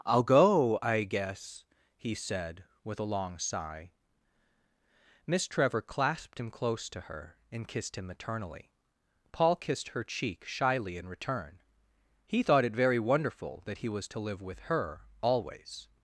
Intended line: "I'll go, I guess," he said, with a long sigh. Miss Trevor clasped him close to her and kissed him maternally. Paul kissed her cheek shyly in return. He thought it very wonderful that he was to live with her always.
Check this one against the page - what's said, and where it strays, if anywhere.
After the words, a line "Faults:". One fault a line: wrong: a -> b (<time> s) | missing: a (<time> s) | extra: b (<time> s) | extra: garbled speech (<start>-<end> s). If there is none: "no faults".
"I'll go, I guess," he said, with a long sigh. Miss Trevor clasped him close to her and kissed him maternally. Paul kissed her cheek shyly in return. He thought it very wonderful that he was to live with her always.
Faults:
no faults